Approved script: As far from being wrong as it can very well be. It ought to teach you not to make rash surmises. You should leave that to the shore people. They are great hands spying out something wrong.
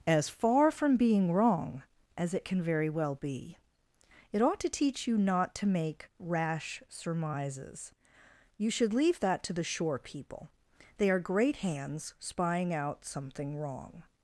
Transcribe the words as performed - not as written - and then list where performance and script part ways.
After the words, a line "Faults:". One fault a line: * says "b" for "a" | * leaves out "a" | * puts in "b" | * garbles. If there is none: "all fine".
As far from being wrong as it can very well be. It ought to teach you not to make rash surmises. You should leave that to the shore people. They are great hands spying out something wrong.
Faults:
all fine